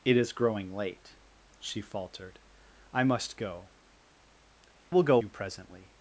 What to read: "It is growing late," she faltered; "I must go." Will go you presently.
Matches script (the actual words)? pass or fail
pass